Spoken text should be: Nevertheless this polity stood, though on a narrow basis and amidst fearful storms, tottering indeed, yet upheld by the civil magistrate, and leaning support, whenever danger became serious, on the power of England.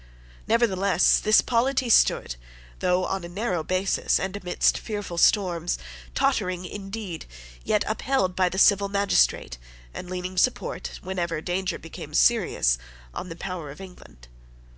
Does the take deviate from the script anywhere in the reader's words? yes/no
no